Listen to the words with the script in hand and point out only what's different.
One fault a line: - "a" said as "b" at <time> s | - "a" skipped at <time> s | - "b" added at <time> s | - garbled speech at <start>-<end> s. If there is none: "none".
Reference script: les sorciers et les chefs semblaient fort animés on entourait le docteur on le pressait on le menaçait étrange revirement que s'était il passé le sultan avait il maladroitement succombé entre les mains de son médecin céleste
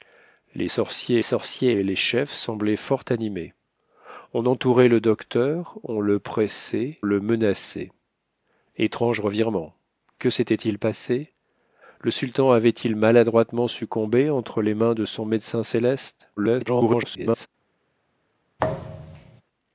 - "sorciers" added at 1.2 s
- "on" skipped at 7.0 s
- garbled speech at 16.4-17.5 s